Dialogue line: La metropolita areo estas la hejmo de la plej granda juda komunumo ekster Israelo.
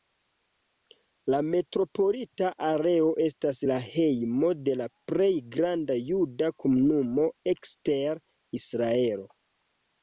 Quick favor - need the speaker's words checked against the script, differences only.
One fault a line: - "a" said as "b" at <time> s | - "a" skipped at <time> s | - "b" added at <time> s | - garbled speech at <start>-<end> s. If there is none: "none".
none